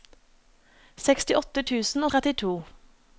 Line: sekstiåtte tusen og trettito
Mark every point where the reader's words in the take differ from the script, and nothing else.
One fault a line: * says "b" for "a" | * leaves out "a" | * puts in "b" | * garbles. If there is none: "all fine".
all fine